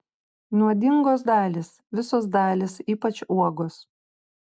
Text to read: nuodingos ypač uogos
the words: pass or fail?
fail